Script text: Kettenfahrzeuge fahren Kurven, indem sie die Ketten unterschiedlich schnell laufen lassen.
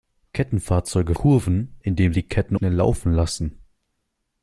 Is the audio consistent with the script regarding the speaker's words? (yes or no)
no